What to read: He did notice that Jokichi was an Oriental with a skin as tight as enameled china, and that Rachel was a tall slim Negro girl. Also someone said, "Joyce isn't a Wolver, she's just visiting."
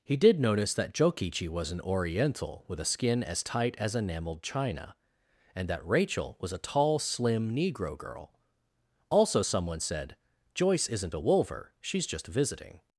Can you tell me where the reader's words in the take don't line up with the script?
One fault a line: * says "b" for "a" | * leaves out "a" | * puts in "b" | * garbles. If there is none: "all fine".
all fine